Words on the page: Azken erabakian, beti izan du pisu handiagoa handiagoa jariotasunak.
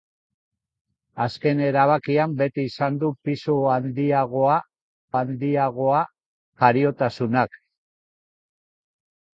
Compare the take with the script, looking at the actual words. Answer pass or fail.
pass